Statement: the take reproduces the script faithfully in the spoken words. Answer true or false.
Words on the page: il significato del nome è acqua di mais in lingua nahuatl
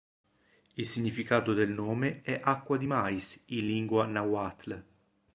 true